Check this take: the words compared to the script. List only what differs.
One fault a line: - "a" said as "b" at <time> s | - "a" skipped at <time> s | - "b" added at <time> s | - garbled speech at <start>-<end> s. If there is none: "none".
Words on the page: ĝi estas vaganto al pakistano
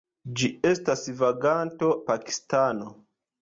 - "al" skipped at 1.9 s